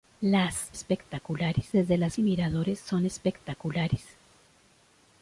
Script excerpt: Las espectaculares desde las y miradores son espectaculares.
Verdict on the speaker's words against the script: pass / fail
pass